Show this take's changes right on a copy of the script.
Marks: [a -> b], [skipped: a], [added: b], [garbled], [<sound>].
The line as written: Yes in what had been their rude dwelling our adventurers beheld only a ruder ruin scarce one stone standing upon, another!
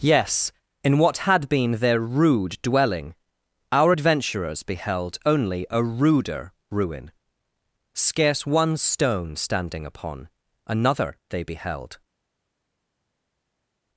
Yes in what had been their rude dwelling our adventurers beheld only a ruder ruin scarce one stone standing upon, another! [added: They beheld]